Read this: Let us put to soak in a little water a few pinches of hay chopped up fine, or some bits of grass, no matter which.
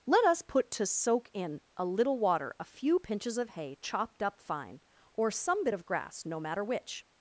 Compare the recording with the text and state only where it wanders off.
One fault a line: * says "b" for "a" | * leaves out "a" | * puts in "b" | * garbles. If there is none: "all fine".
* says "bit" for "bits"